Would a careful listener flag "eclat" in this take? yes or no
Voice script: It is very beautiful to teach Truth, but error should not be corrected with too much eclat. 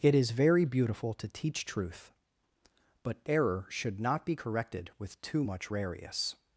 yes